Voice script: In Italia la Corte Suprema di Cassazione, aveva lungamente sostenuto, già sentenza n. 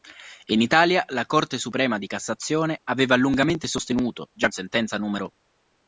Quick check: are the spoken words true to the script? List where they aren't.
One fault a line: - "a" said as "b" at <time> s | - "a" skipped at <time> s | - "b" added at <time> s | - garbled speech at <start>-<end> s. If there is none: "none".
none